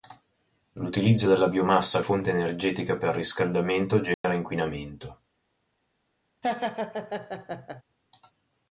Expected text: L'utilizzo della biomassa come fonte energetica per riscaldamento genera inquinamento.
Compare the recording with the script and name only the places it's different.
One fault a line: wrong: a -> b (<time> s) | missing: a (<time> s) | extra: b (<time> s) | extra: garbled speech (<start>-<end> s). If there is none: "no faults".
missing: come (2.0 s)